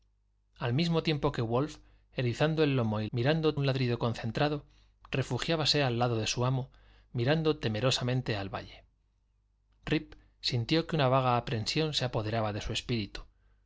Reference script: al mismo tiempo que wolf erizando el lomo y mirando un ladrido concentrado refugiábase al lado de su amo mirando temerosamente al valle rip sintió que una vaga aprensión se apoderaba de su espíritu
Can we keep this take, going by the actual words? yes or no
yes